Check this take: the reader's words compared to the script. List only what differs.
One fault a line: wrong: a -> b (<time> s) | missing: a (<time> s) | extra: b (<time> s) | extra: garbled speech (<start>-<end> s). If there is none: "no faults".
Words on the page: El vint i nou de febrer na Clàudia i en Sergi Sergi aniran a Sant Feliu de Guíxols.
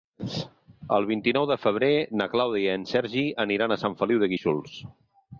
missing: Sergi (3.3 s)